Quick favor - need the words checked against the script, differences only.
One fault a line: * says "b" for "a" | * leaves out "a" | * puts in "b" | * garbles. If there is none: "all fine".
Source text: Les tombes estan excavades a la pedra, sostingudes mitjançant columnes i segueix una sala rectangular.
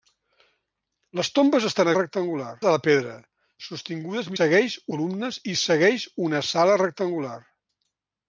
* says "rectangular" for "excavades"
* says "segueix" for "mitjançant"